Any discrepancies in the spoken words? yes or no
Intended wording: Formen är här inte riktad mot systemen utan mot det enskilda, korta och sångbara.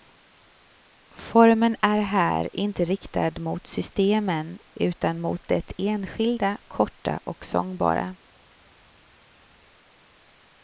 no